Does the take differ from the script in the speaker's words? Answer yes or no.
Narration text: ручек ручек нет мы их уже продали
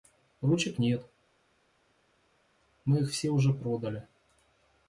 yes